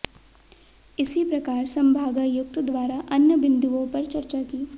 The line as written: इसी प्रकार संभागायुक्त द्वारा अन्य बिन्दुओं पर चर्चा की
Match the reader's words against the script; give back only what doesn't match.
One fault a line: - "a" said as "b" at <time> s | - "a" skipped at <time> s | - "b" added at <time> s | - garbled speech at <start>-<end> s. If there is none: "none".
none